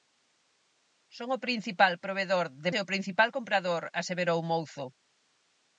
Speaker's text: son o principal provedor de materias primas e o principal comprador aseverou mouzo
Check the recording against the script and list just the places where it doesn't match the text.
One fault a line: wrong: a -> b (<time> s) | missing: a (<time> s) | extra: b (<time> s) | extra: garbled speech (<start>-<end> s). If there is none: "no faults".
missing: materias primas (2.7 s)